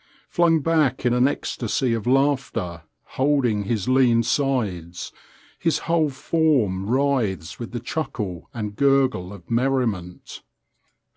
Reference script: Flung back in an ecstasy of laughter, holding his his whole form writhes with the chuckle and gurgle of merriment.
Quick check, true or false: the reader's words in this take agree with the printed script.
false